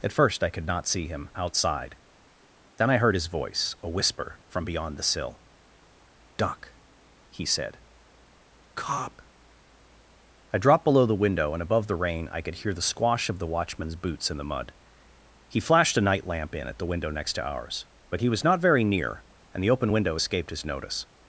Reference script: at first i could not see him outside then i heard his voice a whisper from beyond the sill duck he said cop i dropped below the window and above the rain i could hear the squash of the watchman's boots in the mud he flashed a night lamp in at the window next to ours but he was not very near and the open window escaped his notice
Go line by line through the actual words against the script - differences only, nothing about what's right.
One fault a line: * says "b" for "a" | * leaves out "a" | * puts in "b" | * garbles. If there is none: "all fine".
all fine